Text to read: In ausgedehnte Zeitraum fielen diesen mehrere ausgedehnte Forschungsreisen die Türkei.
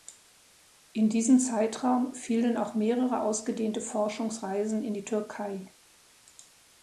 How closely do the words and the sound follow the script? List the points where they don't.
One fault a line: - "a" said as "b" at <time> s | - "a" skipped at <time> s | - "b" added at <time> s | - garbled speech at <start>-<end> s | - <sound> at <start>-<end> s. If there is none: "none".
- "ausgedehnte" said as "diesen" at 1.1 s
- "diesen" said as "auch" at 2.6 s
- "in" added at 4.8 s